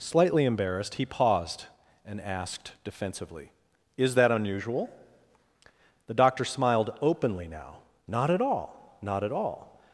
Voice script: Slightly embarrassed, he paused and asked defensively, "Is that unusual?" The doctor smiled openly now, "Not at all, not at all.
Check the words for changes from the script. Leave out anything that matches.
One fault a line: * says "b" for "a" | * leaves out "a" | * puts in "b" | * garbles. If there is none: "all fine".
all fine